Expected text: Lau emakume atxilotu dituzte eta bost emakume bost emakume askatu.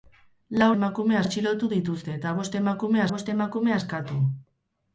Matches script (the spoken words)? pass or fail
pass